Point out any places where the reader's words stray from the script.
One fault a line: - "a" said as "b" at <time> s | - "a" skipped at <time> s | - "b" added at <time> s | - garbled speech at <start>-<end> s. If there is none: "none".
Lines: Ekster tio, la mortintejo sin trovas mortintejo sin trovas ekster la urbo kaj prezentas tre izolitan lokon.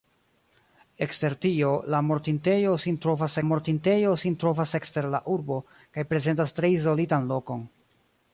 none